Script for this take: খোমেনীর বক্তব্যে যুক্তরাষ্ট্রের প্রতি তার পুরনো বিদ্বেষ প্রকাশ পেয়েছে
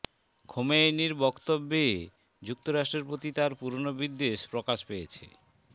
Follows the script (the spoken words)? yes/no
yes